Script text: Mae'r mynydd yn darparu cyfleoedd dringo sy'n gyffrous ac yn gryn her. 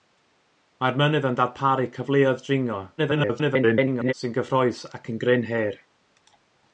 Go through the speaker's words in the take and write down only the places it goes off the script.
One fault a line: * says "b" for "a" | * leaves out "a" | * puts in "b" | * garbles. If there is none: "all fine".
* garbles